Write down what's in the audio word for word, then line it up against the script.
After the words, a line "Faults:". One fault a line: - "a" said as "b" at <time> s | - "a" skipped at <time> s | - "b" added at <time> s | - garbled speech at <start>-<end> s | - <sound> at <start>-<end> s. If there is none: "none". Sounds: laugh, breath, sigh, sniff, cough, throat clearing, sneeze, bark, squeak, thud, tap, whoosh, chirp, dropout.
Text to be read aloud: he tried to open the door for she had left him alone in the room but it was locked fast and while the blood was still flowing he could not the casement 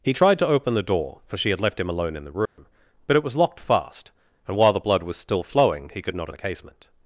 he tried to open the door for she had left him alone in the room but it was locked fast and while the blood was still flowing he could not the casement
Faults:
- dropout at 2.5-2.6 s